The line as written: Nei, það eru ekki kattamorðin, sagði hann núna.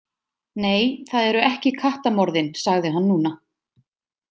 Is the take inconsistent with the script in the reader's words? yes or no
no